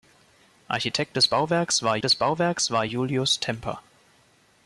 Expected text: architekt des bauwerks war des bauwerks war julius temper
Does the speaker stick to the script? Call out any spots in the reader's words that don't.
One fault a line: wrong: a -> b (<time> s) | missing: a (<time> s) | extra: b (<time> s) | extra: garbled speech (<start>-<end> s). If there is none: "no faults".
no faults